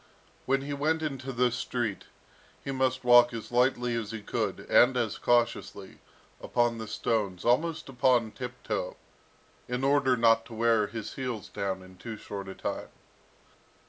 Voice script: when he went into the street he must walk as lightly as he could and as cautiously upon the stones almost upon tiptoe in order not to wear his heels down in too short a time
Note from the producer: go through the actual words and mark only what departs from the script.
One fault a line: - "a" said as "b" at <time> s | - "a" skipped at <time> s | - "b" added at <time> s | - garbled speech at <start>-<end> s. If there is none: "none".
none